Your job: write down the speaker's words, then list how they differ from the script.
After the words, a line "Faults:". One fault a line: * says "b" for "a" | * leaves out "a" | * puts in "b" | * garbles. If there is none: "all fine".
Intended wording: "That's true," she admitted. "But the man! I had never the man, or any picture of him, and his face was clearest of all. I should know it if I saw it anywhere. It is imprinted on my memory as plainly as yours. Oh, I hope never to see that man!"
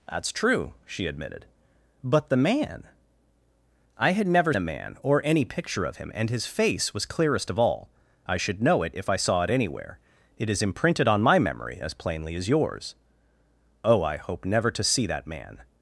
"That's true," she admitted. "But the man! I had never the man, or any picture of him, and his face was clearest of all. I should know it if I saw it anywhere. It is imprinted on my memory as plainly as yours. Oh, I hope never to see that man!"
Faults:
all fine